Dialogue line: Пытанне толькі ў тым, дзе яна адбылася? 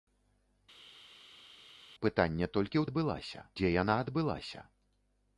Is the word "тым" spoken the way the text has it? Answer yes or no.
no